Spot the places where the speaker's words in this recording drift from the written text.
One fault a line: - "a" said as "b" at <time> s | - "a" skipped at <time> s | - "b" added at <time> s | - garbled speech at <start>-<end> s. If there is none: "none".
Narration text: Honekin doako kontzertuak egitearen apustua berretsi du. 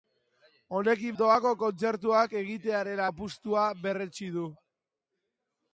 none